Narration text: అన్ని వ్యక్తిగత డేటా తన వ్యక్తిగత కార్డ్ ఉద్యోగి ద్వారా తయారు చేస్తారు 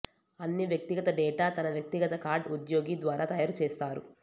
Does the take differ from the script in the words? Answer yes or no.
no